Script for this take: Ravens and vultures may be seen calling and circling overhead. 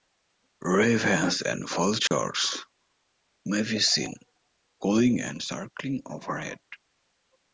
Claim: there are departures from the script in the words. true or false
false